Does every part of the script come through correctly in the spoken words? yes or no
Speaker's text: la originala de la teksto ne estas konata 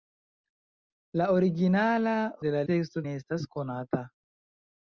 yes